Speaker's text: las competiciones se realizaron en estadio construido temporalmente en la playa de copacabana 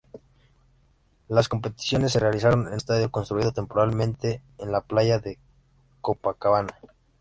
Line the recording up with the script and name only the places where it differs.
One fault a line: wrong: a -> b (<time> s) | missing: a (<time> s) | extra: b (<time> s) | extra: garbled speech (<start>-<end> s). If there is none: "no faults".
no faults